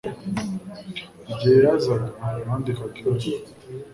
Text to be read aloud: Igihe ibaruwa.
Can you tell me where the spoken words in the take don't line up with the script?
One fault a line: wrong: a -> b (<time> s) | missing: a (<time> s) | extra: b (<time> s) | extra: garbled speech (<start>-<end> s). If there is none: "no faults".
extra: yazaga nandikaga (1.7 s)